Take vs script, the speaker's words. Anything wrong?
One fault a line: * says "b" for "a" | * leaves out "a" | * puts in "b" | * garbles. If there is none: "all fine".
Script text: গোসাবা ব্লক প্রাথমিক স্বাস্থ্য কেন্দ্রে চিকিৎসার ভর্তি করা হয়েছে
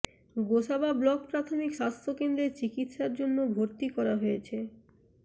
* puts in "জন্য"